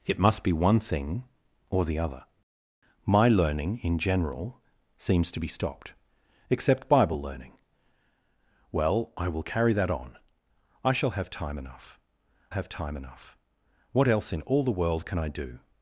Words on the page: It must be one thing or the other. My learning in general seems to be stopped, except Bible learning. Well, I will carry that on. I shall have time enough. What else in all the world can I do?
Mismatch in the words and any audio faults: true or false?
true